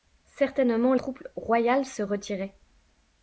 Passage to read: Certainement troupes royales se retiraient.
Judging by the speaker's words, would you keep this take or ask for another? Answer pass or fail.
pass